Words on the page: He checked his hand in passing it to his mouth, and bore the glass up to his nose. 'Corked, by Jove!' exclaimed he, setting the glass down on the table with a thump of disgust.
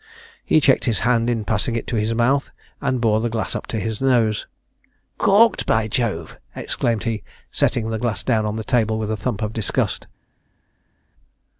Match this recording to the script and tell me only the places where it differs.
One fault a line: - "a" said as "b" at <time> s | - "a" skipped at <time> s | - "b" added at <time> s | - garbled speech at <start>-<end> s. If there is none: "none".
none